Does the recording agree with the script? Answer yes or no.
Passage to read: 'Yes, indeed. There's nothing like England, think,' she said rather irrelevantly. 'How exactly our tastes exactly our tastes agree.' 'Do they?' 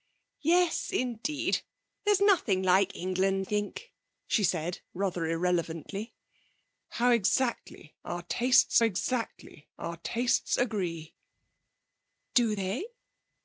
yes